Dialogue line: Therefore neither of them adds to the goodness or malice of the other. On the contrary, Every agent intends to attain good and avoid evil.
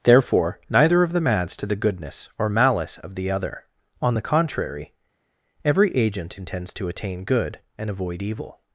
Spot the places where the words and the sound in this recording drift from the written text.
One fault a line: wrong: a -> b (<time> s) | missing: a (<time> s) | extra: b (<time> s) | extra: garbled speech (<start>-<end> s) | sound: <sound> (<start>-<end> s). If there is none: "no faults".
no faults